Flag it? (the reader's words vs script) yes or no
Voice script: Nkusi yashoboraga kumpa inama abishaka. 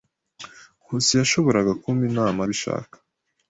no